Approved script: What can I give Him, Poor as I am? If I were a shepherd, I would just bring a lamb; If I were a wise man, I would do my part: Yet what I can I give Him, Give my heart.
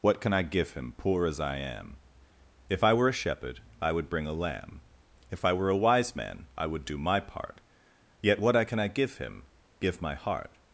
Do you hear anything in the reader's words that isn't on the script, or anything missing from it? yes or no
yes